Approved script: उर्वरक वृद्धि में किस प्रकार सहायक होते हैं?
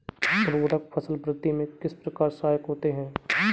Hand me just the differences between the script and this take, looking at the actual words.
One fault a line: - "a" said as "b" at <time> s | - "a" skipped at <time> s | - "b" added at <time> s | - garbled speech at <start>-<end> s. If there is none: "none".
- "फसल" added at 0.9 s